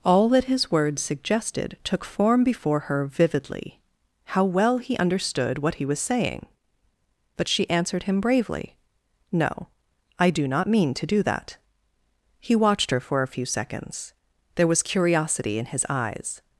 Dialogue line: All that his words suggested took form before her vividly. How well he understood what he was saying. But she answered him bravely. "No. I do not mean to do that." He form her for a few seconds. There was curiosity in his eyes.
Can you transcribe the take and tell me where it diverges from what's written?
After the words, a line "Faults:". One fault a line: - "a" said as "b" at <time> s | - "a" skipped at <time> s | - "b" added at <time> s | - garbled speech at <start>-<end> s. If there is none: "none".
All that his words suggested took form before her vividly. How well he understood what he was saying. But she answered him bravely. "No. I do not mean to do that." He watched her for a few seconds. There was curiosity in his eyes.
Faults:
- "form" said as "watched" at 12.6 s